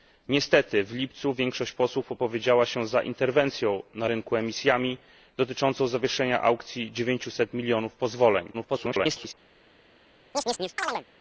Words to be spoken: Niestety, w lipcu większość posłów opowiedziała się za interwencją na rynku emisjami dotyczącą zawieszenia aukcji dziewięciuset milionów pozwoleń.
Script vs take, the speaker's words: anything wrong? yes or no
yes